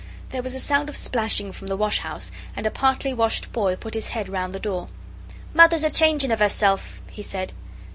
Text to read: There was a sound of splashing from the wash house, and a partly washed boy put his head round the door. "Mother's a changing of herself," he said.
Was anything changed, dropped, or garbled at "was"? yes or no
no